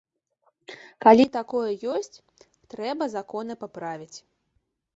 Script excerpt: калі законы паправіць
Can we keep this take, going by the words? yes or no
no